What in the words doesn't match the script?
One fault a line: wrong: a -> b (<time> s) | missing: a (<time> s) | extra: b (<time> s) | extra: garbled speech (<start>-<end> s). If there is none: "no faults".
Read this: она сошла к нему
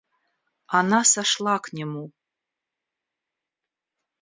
no faults